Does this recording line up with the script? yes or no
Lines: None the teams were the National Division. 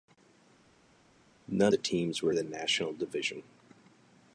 yes